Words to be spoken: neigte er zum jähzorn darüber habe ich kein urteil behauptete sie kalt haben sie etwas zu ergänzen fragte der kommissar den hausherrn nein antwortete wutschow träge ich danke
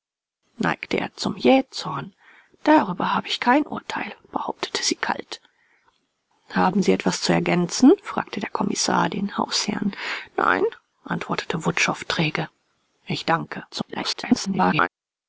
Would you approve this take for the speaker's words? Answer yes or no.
no